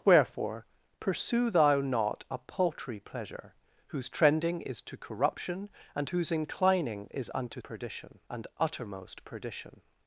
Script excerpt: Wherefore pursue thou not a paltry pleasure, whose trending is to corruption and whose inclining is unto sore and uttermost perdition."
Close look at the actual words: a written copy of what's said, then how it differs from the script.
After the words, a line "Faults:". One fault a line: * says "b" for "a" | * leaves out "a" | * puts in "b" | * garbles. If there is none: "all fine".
Wherefore pursue thou not a paltry pleasure, whose trending is to corruption and whose inclining is unto perdition and uttermost perdition."
Faults:
* says "perdition" for "sore"